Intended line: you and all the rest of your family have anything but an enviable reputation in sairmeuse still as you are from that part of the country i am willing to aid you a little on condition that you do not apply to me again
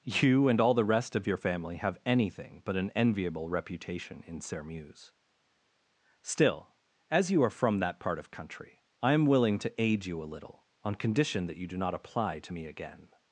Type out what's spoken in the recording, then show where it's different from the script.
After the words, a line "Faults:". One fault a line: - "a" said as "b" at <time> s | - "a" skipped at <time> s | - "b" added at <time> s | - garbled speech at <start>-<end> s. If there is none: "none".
you and all the rest of your family have anything but an enviable reputation in sairmeuse still as you are from that part of country i am willing to aid you a little on condition that you do not apply to me again
Faults:
- "the" skipped at 8.3 s